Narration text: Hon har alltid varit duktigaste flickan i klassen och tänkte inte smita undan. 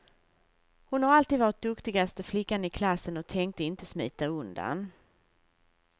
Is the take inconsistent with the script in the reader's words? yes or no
no